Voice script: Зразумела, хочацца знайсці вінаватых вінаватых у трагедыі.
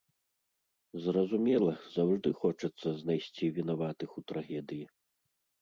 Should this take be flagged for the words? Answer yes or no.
yes